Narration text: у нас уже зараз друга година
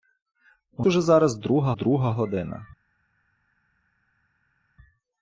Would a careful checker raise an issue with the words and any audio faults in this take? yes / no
yes